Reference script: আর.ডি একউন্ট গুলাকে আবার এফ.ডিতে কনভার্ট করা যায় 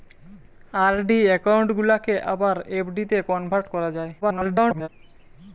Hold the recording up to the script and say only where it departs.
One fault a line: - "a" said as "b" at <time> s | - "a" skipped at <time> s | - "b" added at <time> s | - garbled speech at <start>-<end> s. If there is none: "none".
- garbled speech at 4.2-4.9 s